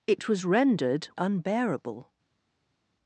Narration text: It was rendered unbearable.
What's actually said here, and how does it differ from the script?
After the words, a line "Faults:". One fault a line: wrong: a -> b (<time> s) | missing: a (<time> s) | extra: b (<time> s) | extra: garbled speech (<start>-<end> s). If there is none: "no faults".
It was rendered unbearable.
Faults:
no faults